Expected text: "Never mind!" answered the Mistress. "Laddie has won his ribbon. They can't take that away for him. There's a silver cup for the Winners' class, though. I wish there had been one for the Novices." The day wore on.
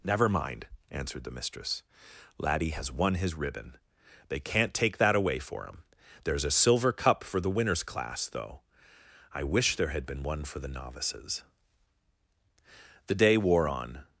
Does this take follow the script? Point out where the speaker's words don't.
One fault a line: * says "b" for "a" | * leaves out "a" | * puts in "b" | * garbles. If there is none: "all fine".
all fine